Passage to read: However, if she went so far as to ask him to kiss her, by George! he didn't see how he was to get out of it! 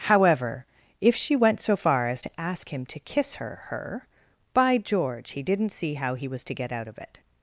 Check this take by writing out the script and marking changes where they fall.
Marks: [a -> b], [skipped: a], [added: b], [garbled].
However, if she went so far as to ask him to kiss her, [added: her] by George! he didn't see how he was to get out of it!